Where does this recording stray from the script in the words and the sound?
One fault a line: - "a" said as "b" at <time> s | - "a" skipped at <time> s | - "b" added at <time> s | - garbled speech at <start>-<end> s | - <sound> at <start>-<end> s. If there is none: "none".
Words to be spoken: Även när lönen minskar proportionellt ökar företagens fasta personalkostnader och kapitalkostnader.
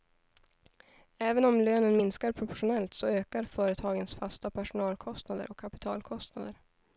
- "när" said as "om" at 1.4 s
- "så" added at 2.9 s